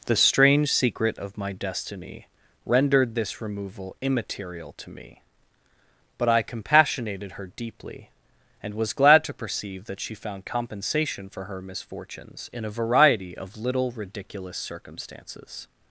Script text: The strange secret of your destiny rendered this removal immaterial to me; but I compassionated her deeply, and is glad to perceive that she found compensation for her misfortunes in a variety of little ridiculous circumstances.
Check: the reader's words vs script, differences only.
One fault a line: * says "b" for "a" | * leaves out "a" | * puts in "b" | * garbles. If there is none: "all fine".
* says "my" for "your"
* says "was" for "is"